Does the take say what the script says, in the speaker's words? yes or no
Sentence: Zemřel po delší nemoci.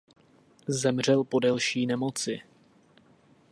yes